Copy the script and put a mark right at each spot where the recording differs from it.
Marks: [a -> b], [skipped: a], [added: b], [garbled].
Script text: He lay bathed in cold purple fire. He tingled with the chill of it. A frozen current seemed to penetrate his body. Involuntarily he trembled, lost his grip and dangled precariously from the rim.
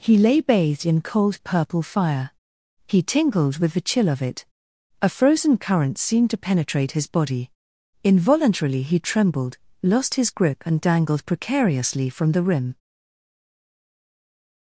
He lay bathed in cold purple fire. He tingled with the chill of it. A frozen current seemed to penetrate his body. Involuntarily he trembled, lost his grip and dangled precariously from the rim.